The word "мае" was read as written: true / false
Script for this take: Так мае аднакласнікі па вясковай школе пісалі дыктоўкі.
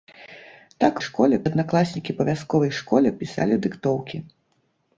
false